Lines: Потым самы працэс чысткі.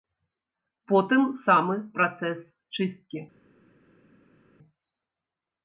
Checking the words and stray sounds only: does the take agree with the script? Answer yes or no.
yes